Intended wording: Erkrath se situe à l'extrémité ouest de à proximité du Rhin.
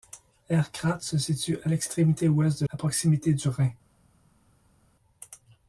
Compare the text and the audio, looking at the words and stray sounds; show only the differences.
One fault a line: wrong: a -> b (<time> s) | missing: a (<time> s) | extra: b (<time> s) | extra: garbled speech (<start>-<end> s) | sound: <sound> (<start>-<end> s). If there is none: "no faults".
no faults